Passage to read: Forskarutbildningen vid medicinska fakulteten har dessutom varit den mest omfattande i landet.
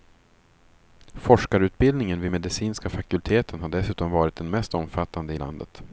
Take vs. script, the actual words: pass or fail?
pass